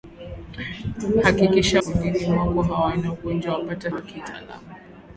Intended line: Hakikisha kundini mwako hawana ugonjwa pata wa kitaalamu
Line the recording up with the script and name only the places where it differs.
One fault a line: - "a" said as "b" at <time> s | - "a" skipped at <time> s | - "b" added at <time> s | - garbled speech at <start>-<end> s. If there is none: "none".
none